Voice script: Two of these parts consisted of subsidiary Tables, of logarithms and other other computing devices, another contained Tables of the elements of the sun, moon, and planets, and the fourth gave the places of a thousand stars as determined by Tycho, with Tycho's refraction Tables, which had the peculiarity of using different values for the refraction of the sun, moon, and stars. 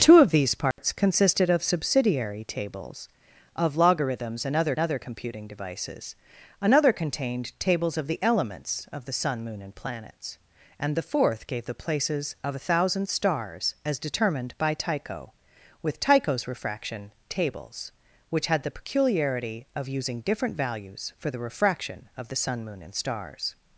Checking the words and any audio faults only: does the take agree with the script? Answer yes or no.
no